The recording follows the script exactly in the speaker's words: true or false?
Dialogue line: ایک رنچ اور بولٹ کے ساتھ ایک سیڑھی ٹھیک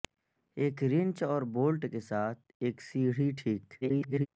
false